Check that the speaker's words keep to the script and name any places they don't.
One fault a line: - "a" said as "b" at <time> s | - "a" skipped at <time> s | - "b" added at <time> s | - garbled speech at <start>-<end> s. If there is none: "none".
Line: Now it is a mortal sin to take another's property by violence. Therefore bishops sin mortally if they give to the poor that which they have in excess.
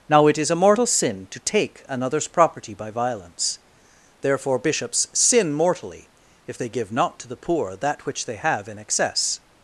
- "not" added at 6.9 s